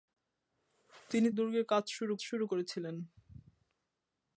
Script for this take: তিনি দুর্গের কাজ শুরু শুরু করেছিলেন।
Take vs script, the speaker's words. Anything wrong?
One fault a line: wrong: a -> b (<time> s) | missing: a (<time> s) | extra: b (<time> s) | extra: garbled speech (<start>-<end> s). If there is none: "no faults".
no faults